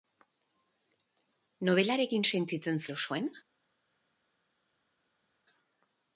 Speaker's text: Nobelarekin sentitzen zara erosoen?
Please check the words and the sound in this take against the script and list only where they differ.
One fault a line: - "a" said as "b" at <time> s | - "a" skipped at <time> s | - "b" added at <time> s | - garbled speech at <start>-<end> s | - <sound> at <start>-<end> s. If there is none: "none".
- "zara" skipped at 2.9 s